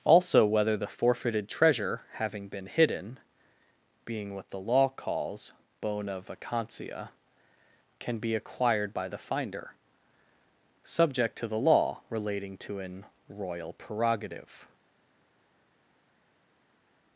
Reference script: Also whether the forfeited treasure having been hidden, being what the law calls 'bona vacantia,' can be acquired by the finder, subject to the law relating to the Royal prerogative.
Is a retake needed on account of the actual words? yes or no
yes